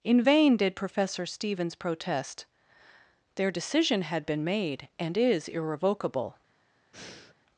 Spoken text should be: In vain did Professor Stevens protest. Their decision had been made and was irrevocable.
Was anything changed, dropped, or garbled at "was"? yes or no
yes